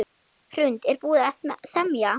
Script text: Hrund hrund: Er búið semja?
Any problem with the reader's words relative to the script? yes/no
yes